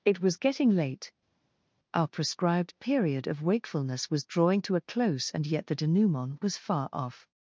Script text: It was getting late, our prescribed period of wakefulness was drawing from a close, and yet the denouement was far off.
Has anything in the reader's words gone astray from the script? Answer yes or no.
yes